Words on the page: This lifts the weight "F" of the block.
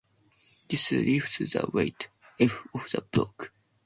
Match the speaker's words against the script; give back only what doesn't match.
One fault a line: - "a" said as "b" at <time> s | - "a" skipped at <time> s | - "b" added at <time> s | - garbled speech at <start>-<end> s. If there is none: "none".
none